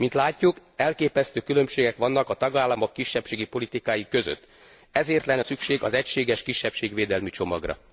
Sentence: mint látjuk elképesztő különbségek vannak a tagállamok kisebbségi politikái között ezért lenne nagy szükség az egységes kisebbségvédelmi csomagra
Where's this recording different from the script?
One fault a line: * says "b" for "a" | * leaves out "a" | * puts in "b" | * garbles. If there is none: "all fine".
* leaves out "nagy"